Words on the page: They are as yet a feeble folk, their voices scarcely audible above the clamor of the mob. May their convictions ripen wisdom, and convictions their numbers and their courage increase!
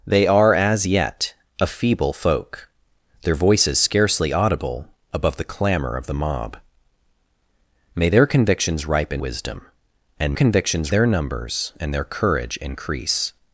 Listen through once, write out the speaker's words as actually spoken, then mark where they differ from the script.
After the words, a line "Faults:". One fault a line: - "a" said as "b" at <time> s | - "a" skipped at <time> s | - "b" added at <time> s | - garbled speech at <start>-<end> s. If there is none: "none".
They are as yet a feeble folk, their voices scarcely audible above the clamor of the mob. May their convictions ripen wisdom, and convictions their numbers and their courage increase!
Faults:
none